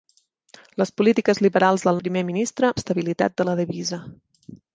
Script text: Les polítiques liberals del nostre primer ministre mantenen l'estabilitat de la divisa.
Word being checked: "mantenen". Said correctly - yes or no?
no